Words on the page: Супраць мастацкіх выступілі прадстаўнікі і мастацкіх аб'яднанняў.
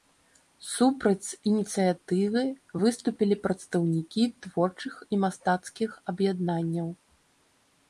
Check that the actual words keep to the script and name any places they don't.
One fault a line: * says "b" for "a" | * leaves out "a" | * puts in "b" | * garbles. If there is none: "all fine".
* says "ініцыятывы" for "мастацкіх"
* puts in "творчых"